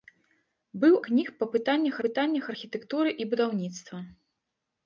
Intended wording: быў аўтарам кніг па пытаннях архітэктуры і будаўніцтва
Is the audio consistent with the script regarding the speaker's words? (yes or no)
no